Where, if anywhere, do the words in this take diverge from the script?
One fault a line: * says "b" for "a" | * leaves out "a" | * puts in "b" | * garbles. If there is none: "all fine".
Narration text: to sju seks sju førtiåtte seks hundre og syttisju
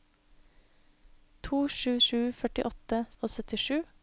* leaves out "seks"
* leaves out "seks hundre"